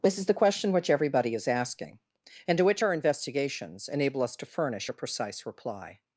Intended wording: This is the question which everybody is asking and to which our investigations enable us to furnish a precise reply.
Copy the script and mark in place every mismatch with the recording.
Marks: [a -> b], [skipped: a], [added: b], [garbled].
This is the question which everybody is asking and to which our investigations enable us to furnish a precise reply.